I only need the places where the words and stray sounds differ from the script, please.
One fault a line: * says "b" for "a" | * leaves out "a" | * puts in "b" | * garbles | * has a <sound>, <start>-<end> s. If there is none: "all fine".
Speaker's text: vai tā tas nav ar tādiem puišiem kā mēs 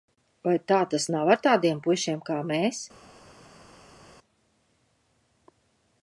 all fine